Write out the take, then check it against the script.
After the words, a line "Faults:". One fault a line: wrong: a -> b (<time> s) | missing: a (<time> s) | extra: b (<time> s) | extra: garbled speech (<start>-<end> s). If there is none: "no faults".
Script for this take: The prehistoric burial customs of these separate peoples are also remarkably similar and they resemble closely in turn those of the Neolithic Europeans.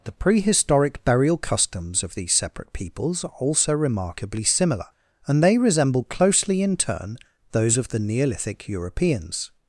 The prehistoric burial customs of these separate peoples are also remarkably similar and they resemble closely in turn those of the Neolithic Europeans.
Faults:
no faults